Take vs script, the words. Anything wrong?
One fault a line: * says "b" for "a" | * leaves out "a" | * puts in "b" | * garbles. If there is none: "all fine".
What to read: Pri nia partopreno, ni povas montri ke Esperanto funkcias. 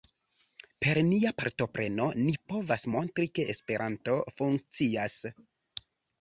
* says "Per" for "Pri"